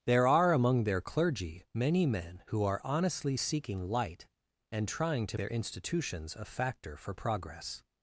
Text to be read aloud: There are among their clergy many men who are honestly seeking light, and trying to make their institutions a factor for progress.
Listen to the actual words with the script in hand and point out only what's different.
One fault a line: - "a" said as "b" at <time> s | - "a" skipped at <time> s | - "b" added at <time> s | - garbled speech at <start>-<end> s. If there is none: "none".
- "make" skipped at 5.4 s